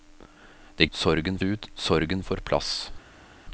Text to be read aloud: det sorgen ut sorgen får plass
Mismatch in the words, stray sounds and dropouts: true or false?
false